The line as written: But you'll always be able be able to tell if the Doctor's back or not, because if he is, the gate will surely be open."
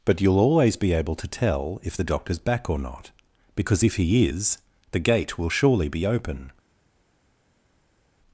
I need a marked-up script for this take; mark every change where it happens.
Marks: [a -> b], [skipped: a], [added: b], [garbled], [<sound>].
But you'll always be able [skipped: be able] to tell if the Doctor's back or not, because if he is, the gate will surely be open."